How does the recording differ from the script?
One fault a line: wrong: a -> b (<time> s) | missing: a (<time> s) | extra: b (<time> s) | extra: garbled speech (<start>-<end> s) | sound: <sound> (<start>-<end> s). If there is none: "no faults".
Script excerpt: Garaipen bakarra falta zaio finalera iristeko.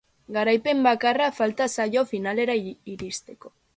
no faults